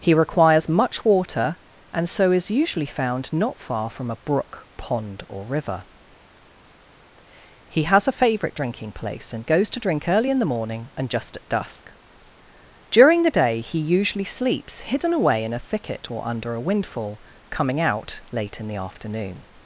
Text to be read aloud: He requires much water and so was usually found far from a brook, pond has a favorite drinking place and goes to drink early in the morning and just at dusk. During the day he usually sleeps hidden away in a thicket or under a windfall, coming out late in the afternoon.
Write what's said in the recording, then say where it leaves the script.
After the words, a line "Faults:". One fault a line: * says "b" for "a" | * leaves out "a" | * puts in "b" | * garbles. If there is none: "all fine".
He requires much water and so is usually found not far from a brook, pond or river. He has a favorite drinking place and goes to drink early in the morning and just at dusk. During the day he usually sleeps hidden away in a thicket or under a windfall, coming out late in the afternoon.
Faults:
* says "is" for "was"
* puts in "not"
* puts in "or river He"